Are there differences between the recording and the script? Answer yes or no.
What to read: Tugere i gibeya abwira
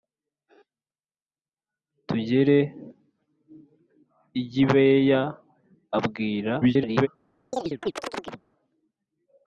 yes